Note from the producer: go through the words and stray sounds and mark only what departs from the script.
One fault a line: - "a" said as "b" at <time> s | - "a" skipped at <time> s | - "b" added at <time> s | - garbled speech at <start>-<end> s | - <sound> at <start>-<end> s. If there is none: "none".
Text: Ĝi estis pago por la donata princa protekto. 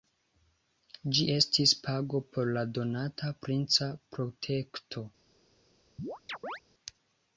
- chirp at 6.0-6.6 s